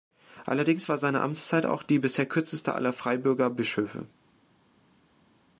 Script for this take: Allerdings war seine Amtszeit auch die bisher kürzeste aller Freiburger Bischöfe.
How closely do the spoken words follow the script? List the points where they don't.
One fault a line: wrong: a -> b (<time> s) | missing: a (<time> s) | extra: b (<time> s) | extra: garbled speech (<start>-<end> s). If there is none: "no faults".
no faults